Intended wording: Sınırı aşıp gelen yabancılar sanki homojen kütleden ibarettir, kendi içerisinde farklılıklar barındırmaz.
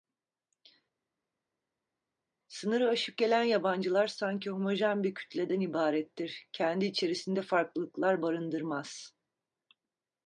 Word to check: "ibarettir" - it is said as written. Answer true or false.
true